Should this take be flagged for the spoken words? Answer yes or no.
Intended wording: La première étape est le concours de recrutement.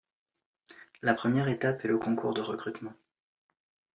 no